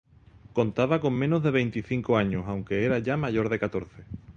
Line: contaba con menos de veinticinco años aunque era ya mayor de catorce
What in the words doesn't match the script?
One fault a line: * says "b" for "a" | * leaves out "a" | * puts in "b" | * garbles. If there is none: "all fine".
all fine